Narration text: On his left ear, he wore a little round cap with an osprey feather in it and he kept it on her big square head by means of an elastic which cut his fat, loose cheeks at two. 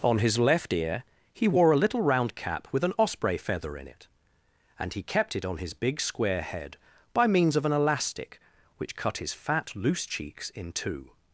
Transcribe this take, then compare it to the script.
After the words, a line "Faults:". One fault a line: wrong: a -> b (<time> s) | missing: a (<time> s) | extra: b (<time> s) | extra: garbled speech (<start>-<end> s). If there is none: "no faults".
On his left ear, he wore a little round cap with an osprey feather in it and he kept it on his big square head by means of an elastic which cut his fat, loose cheeks in two.
Faults:
wrong: her -> his (5.6 s)
wrong: at -> in (10.5 s)